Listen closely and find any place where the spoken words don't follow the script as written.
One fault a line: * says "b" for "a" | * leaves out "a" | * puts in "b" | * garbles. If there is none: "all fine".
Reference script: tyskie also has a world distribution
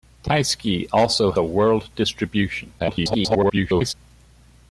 * leaves out "has"
* garbles